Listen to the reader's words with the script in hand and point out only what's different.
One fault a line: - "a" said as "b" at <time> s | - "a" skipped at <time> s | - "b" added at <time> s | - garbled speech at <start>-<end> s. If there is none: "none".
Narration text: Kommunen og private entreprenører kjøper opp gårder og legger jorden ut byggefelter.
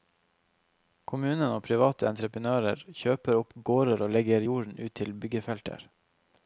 - "til" added at 5.0 s